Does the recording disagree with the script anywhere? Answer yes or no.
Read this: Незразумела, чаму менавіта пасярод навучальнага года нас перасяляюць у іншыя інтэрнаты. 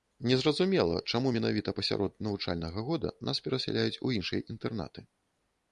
no